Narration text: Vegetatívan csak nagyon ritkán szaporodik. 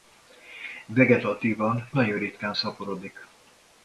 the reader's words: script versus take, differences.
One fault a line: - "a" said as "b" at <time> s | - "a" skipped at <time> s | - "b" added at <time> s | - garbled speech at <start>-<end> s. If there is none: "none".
- "csak" skipped at 1.9 s